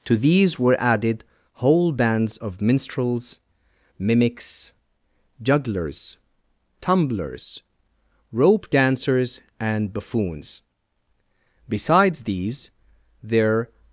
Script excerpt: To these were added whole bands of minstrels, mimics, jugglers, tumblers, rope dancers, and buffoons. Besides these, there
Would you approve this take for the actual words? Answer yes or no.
yes